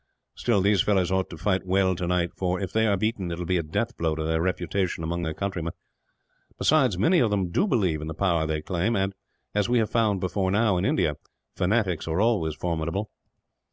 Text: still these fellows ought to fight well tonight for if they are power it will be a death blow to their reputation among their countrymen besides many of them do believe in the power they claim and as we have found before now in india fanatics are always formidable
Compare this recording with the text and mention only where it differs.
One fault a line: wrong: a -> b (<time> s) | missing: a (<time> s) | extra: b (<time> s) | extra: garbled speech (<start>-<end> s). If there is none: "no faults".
wrong: power -> beaten (2.9 s)